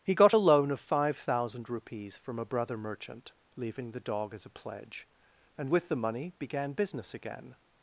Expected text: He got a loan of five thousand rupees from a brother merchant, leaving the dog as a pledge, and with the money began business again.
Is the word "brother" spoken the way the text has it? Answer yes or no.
yes